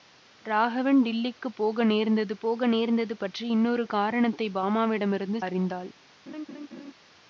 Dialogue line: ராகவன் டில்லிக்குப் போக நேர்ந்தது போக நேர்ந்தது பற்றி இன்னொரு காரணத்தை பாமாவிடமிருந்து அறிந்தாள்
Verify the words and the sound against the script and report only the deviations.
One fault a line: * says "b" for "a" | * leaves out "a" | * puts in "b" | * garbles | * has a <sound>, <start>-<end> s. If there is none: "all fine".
* has a laugh, 6.3-6.9 s